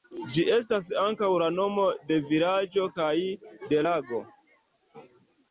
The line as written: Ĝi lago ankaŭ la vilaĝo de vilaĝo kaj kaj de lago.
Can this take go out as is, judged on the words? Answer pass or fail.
fail